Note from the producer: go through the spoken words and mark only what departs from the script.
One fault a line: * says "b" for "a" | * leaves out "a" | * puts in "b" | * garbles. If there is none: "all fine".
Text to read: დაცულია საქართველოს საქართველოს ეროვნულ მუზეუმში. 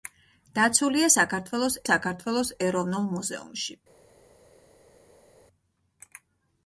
all fine